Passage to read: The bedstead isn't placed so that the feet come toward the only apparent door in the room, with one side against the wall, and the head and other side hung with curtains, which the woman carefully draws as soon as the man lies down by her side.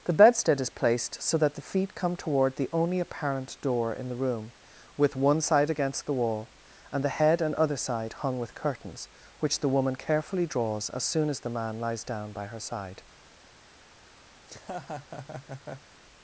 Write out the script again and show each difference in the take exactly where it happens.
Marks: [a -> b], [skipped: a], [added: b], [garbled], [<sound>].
The bedstead [isn't -> is] placed so that the feet come toward the only apparent door in the room, with one side against the wall, and the head and other side hung with curtains, which the woman carefully draws as soon as the man lies down by her side. [laugh]